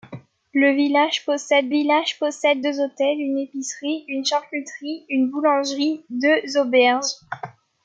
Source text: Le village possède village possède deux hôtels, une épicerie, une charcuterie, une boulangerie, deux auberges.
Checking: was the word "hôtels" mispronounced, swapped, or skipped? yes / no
no